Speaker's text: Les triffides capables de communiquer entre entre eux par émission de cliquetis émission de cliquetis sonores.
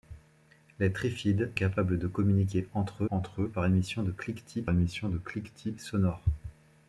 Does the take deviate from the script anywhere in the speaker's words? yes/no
no